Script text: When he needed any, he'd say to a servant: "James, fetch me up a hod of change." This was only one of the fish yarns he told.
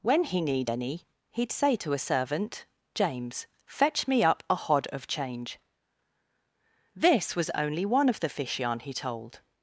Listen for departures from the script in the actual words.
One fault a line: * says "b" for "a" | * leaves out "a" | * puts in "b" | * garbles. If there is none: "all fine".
* says "need" for "needed"
* says "yarn" for "yarns"